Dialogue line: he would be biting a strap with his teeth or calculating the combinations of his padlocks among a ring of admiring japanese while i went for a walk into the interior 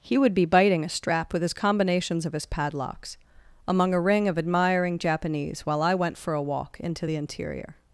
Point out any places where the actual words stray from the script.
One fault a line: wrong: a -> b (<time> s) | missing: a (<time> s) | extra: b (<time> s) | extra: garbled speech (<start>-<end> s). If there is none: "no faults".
missing: teeth or calculating the (1.5 s)